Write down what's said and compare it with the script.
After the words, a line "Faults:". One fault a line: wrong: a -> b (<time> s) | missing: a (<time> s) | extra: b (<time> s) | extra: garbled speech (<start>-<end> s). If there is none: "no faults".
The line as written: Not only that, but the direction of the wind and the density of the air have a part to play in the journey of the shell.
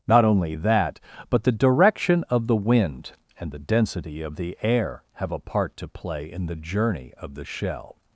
Not only that, but the direction of the wind and the density of the air have a part to play in the journey of the shell.
Faults:
no faults